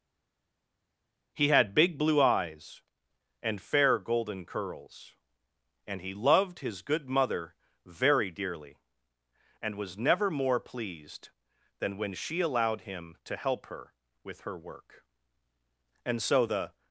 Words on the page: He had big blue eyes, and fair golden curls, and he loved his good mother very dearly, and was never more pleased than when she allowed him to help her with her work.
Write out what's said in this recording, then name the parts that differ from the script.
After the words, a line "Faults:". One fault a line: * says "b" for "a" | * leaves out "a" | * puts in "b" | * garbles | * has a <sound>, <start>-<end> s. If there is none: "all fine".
He had big blue eyes, and fair golden curls, and he loved his good mother very dearly, and was never more pleased than when she allowed him to help her with her work. And so the
Faults:
* puts in "And so the"